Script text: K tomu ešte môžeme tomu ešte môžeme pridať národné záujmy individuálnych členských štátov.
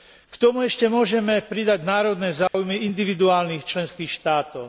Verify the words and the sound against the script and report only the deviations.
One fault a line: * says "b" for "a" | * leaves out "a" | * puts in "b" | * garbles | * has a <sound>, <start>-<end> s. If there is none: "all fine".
* leaves out "tomu ešte môžeme"
* has a dropout, 2.5-2.5 s